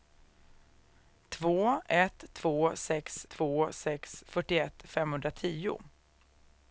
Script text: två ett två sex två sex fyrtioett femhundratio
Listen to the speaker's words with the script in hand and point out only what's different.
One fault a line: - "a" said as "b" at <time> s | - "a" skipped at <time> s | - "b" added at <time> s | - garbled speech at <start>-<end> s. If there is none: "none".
none